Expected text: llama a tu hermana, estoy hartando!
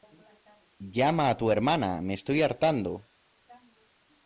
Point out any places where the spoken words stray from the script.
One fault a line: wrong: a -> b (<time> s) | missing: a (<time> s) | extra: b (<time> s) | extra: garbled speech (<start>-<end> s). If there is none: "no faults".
extra: me (2.0 s)